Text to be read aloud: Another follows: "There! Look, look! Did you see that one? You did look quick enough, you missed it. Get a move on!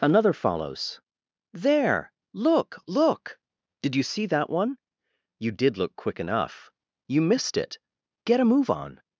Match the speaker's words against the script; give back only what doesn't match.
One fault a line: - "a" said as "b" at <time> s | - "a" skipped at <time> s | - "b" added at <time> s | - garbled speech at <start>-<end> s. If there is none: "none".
none